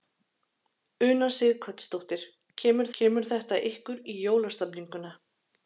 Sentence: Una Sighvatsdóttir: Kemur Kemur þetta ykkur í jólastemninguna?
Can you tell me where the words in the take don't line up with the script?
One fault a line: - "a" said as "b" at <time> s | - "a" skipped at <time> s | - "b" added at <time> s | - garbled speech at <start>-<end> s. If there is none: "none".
none